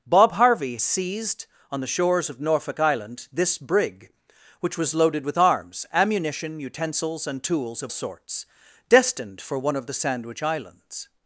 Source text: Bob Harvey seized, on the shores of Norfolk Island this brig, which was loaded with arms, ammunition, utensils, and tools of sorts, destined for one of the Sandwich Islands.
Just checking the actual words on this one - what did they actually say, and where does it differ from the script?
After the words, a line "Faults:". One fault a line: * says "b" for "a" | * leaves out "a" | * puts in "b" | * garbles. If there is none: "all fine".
Bob Harvey seized, on the shores of Norfolk Island this brig, which was loaded with arms, ammunition, utensils, and tools of sorts, destined for one of the Sandwich Islands.
Faults:
all fine